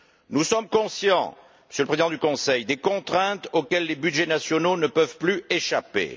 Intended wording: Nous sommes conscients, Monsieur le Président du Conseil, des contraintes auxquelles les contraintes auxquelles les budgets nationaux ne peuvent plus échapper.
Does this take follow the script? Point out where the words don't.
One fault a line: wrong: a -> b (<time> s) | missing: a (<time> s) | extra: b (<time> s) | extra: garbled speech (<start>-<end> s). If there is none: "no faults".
missing: contraintes auxquelles les (4.0 s)